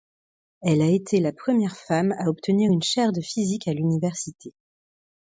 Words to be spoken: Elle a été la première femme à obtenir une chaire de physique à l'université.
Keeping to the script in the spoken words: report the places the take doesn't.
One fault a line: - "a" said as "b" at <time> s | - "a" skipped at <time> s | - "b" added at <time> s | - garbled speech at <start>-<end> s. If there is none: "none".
none